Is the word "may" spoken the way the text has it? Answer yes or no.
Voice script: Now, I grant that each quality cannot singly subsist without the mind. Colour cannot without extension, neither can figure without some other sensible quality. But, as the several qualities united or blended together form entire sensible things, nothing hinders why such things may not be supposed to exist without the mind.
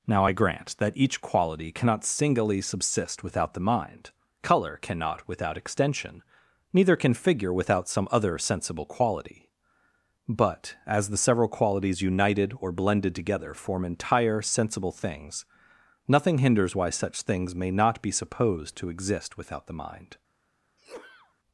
yes